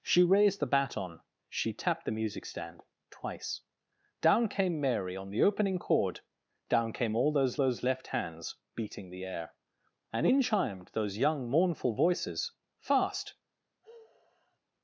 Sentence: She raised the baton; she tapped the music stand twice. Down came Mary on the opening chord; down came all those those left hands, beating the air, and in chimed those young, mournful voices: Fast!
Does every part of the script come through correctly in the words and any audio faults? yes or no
no